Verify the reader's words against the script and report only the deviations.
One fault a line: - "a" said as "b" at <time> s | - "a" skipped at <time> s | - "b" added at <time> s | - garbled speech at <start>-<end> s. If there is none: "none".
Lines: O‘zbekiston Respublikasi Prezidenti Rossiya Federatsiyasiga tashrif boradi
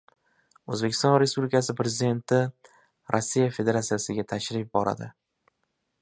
none